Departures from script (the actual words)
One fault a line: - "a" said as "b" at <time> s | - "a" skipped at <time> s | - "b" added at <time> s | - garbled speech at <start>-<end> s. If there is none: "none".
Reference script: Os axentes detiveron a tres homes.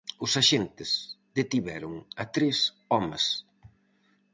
none